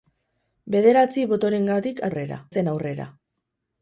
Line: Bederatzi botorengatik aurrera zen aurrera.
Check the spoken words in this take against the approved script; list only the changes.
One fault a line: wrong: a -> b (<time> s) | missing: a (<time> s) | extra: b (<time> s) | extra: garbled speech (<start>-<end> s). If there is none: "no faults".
no faults